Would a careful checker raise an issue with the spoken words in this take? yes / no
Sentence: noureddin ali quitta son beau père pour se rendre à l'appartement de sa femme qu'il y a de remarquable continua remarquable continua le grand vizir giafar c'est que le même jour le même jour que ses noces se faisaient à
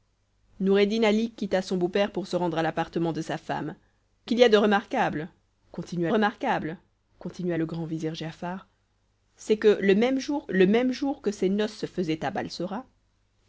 no